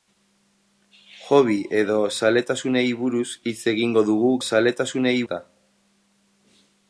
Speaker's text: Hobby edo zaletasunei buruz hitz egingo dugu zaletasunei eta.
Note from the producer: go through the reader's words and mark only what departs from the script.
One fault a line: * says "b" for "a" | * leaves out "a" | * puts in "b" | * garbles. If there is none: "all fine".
all fine